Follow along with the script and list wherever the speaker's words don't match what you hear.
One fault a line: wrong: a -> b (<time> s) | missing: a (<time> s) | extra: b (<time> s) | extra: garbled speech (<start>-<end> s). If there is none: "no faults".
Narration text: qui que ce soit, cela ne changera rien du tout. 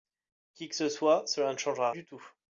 missing: rien (1.9 s)